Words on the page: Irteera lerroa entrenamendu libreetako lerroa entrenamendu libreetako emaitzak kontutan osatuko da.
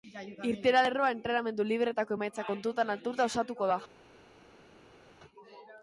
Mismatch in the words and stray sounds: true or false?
true